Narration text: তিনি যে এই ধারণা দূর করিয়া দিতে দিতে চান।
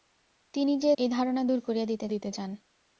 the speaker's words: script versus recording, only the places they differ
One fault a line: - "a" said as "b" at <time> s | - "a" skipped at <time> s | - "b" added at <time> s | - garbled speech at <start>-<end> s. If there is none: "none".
none